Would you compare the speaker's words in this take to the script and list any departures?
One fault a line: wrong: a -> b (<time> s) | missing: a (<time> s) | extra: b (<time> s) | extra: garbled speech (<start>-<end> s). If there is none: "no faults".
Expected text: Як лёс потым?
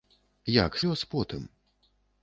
no faults